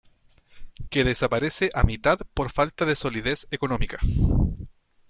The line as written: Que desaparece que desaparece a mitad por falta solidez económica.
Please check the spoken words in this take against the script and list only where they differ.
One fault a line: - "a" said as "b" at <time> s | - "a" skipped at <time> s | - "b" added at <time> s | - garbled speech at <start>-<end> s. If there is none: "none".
- "que desaparece" skipped at 1.7 s
- "de" added at 2.8 s